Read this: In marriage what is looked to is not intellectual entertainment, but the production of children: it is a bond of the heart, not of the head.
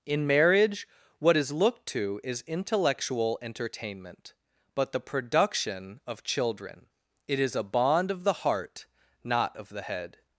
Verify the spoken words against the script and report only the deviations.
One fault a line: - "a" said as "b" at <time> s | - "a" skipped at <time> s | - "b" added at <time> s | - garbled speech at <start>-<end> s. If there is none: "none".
- "not" skipped at 2.4 s